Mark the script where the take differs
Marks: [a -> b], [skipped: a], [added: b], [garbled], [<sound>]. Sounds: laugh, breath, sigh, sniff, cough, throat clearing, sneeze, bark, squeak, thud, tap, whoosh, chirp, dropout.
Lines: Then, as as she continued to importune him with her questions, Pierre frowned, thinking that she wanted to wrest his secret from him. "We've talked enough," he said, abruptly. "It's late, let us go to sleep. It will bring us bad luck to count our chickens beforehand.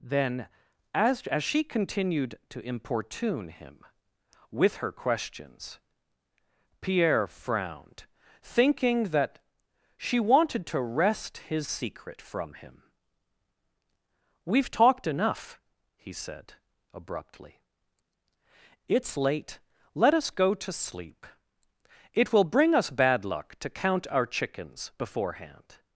Then, as as she continued to importune him with her questions, Pierre frowned, thinking that she wanted to wrest his secret from him. "We've talked enough," he said, abruptly. "It's late, let us go to sleep. It will bring us bad luck to count our chickens beforehand.